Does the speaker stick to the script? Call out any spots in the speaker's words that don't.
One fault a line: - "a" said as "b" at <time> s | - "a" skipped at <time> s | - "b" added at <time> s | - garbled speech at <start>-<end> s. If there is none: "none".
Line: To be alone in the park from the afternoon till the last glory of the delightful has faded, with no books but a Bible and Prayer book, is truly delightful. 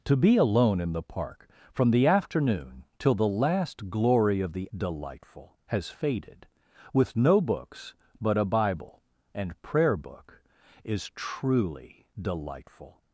none